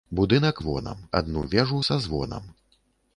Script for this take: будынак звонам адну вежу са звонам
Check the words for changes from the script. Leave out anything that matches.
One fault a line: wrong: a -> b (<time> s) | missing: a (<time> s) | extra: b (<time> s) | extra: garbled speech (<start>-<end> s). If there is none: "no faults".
no faults